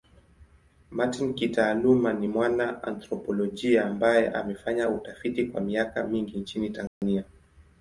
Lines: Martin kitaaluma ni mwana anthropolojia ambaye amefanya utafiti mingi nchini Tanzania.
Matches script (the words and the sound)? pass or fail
fail